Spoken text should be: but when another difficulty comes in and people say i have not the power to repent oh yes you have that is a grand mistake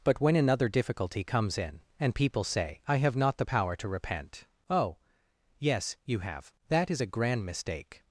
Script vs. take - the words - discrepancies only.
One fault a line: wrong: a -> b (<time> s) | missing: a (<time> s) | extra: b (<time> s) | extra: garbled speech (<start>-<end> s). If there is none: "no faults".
no faults